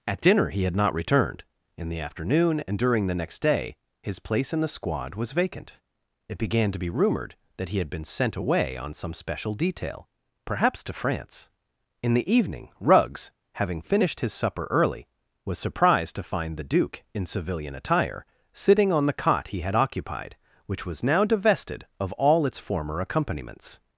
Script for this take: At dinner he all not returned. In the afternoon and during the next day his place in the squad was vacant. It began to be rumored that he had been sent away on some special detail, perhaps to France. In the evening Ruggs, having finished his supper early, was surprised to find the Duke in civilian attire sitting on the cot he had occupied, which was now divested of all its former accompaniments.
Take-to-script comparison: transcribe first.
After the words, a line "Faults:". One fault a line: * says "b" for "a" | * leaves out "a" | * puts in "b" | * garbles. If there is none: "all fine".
At dinner he had not returned. In the afternoon and during the next day his place in the squad was vacant. It began to be rumored that he had been sent away on some special detail, perhaps to France. In the evening Ruggs, having finished his supper early, was surprised to find the Duke in civilian attire sitting on the cot he had occupied, which was now divested of all its former accompaniments.
Faults:
* says "had" for "all"